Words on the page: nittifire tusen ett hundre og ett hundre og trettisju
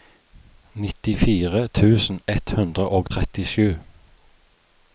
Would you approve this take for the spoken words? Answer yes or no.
no